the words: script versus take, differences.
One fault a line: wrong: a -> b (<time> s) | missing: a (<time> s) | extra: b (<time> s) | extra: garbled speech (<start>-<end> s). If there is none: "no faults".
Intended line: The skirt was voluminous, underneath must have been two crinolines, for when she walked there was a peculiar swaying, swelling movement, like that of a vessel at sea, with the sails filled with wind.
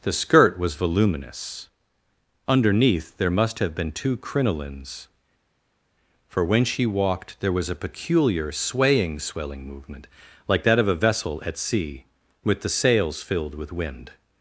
extra: there (3.2 s)